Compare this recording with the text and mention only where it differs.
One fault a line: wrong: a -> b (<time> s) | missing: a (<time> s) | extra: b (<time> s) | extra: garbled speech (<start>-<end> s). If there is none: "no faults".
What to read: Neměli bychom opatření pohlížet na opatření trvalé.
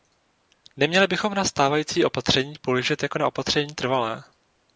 extra: na stávající (1.3 s)
extra: jako (3.0 s)